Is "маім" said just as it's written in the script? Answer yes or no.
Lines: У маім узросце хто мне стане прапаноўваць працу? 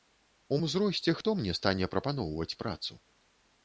no